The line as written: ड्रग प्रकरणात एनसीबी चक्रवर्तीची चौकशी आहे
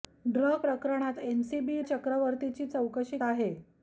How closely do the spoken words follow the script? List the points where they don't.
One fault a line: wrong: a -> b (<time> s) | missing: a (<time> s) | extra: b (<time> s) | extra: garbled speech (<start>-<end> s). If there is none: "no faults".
no faults